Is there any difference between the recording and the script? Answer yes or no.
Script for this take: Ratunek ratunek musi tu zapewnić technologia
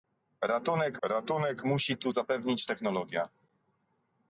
no